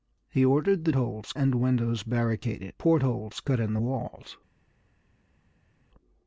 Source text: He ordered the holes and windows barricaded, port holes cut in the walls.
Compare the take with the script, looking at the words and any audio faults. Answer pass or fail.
pass